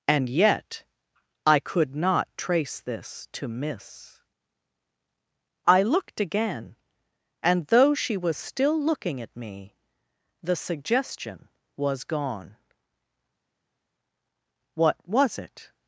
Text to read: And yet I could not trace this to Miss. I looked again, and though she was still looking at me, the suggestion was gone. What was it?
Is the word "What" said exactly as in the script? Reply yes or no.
yes